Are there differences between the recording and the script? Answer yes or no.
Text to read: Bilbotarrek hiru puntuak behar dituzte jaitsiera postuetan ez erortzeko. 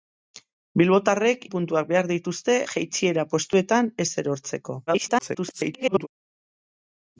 yes